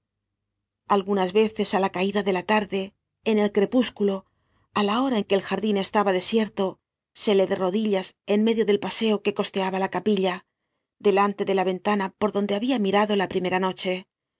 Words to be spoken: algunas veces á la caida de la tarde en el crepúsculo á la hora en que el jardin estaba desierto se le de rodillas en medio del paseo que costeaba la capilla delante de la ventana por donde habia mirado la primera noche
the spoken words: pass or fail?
pass